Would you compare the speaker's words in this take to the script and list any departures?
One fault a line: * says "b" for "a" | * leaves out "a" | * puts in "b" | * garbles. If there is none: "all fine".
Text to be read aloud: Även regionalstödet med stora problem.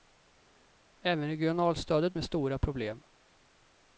all fine